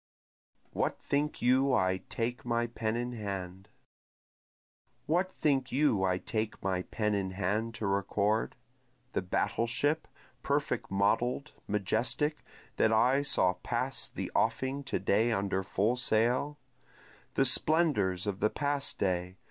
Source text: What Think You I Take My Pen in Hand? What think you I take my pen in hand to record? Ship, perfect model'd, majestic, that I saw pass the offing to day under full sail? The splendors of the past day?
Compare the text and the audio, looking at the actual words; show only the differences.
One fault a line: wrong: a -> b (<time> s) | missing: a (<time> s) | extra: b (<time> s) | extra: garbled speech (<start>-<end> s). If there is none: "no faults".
extra: The battle (9.1 s)